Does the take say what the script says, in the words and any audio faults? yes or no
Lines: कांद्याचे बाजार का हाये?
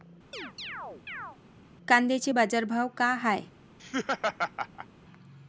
no